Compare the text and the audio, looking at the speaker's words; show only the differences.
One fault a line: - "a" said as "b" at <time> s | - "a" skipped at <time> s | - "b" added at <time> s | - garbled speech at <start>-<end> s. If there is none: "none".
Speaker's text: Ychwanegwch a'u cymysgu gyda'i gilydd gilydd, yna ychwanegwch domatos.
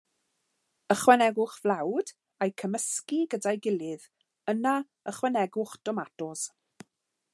- "flawd" added at 1.6 s
- "gilydd" skipped at 4.1 s